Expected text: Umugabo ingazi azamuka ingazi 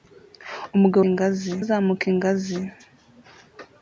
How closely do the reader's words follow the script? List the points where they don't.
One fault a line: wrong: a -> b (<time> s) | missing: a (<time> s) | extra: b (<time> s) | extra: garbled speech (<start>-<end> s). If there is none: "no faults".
no faults